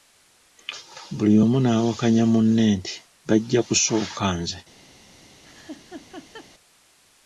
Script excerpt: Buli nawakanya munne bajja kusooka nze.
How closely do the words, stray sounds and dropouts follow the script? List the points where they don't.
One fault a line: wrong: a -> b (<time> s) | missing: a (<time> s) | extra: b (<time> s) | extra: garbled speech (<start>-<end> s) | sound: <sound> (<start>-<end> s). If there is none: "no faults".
extra: omu (1.4 s)
extra: nti (2.8 s)
sound: laugh (5.4-6.5 s)